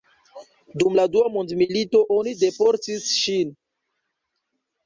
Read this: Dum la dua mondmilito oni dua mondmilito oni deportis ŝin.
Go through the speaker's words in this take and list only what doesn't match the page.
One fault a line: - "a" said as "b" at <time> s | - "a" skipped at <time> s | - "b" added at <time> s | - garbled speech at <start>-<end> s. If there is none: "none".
- "dua mondmilito oni" skipped at 2.3 s